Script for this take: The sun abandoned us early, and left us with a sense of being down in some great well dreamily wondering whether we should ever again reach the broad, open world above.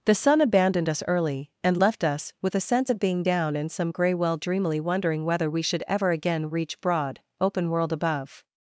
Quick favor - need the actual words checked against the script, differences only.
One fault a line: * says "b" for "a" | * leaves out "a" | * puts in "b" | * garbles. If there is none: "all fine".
* says "grey" for "great"
* leaves out "the"